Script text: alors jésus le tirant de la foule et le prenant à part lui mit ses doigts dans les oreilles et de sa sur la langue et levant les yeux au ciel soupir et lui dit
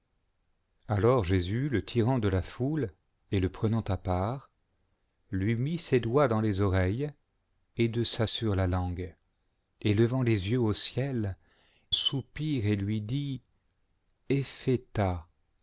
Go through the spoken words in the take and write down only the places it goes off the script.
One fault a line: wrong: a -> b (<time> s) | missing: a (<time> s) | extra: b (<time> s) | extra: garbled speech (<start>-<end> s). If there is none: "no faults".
no faults